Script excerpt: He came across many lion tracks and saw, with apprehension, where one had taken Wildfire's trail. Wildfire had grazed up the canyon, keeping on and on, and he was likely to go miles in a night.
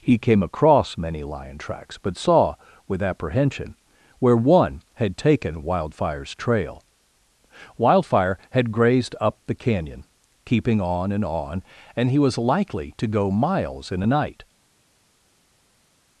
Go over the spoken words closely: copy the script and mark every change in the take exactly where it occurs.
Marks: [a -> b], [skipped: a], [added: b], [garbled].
He came across many lion tracks [and -> but] saw, with apprehension, where one had taken Wildfire's trail. Wildfire had grazed up the canyon, keeping on and on, and he was likely to go miles in a night.